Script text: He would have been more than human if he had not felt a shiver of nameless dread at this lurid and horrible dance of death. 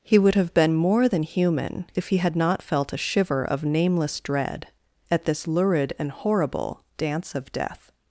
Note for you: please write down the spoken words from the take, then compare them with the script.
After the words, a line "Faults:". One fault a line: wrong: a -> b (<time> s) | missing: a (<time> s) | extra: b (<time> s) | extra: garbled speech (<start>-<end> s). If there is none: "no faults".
He would have been more than human if he had not felt a shiver of nameless dread at this lurid and horrible dance of death.
Faults:
no faults